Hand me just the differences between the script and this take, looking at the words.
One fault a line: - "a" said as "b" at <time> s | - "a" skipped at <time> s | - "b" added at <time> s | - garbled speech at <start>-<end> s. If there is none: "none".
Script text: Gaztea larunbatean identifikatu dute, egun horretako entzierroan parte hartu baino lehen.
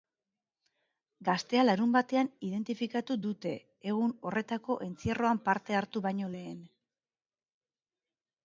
none